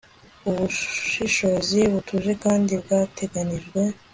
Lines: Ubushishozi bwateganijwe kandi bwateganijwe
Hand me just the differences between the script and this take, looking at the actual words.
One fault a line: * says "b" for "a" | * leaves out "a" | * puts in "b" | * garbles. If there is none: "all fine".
* says "butuje" for "bwateganijwe"